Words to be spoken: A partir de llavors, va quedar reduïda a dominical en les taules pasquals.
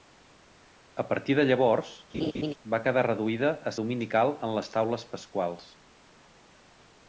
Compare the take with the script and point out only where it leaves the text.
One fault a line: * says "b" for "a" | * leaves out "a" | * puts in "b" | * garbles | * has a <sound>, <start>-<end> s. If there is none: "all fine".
* has a laugh, 2.1-2.5 s